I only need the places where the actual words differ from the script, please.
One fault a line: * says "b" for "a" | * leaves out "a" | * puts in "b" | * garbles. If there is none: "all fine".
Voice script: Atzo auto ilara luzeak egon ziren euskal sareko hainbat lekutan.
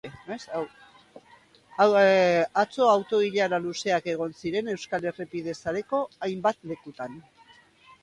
* puts in "errepide"